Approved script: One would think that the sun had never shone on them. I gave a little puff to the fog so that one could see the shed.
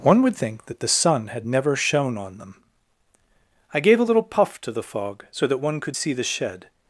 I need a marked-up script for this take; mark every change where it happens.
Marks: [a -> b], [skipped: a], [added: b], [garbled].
One would think that the sun had never shone on them. I gave a little puff to the fog so that one could see the shed.